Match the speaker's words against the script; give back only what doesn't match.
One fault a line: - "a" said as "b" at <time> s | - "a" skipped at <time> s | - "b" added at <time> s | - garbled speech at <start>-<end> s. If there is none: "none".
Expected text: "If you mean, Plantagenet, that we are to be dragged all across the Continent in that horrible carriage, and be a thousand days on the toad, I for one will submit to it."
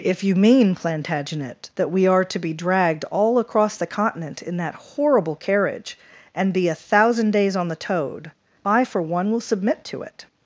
none